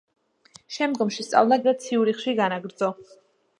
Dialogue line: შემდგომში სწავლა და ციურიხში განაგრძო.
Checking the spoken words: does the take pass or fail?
pass